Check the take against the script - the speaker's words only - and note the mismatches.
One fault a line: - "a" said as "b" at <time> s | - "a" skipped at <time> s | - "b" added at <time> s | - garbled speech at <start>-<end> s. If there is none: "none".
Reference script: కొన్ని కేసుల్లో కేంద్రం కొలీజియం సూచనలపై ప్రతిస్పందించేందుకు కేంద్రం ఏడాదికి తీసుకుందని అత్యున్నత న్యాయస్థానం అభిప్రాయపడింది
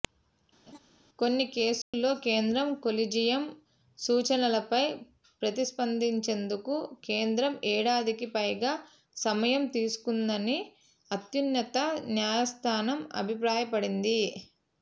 - "పైగా సమయం" added at 8.3 s